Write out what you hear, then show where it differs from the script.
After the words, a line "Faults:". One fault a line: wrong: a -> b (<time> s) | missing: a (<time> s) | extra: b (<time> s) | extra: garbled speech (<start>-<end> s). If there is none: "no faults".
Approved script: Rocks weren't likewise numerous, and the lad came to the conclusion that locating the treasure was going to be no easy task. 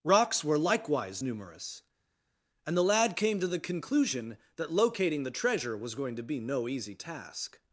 Rocks were likewise numerous, and the lad came to the conclusion that locating the treasure was going to be no easy task.
Faults:
wrong: weren't -> were (0.4 s)